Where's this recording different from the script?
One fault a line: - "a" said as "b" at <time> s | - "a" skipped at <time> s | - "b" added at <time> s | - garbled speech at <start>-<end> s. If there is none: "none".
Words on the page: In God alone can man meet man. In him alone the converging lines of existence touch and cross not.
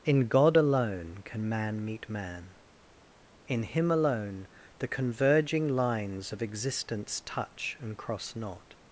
none